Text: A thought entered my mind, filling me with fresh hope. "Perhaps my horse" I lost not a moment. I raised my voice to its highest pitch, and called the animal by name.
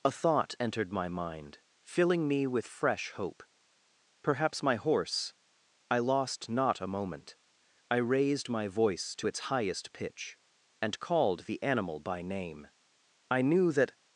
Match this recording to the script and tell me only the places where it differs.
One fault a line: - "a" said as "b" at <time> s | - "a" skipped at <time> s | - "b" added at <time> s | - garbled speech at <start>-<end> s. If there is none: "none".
- "I knew that" added at 13.3 s